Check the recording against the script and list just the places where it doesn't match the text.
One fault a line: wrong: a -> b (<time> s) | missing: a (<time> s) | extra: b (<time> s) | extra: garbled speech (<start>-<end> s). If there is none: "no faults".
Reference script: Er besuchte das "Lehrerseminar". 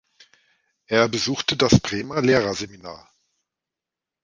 extra: Bremer (1.8 s)